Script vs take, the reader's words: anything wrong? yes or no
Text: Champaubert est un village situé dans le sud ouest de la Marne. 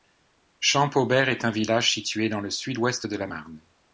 no